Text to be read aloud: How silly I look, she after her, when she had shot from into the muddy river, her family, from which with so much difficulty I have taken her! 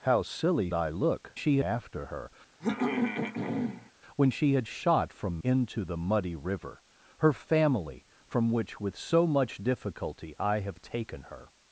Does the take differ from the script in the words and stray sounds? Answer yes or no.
yes